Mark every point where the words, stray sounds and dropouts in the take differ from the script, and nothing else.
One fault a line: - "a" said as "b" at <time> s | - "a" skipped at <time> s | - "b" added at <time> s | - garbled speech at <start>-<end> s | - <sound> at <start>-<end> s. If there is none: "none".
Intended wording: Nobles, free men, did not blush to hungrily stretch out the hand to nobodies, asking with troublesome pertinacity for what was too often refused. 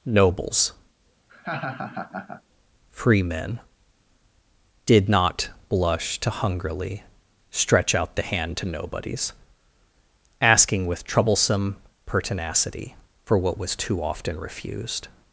- laugh at 1.3-2.4 s